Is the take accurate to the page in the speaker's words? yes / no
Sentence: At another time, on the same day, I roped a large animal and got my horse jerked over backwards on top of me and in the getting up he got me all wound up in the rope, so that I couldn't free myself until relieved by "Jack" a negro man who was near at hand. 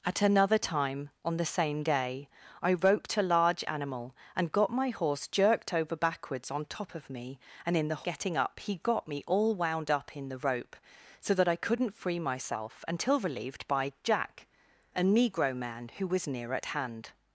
yes